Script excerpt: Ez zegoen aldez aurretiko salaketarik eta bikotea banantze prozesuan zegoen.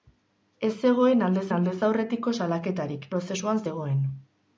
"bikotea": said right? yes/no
no